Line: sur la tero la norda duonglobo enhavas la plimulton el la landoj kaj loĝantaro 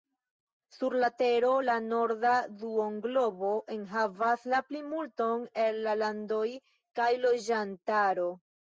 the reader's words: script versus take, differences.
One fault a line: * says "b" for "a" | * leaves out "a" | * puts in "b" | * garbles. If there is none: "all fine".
all fine